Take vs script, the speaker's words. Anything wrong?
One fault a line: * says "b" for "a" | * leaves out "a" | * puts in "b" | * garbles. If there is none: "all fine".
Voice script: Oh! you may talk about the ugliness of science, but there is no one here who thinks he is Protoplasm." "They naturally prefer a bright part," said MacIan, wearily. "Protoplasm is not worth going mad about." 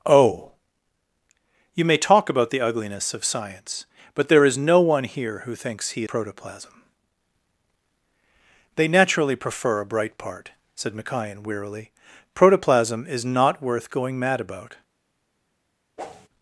* leaves out "is"